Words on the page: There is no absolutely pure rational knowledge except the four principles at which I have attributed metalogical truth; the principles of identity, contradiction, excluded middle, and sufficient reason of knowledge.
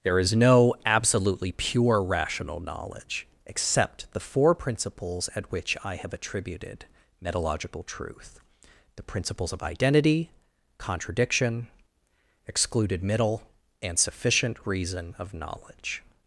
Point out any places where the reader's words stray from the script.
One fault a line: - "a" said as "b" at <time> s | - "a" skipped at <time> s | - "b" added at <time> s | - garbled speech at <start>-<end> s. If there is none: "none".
none